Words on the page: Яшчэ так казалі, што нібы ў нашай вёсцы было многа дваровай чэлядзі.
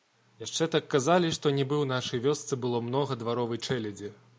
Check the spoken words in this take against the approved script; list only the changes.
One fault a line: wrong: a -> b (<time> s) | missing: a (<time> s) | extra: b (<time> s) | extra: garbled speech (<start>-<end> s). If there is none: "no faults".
no faults